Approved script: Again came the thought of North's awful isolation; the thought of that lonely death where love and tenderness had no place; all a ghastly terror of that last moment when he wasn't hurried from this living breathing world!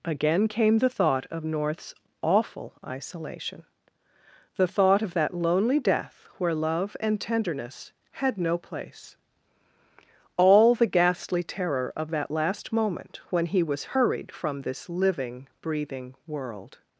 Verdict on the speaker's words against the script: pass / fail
fail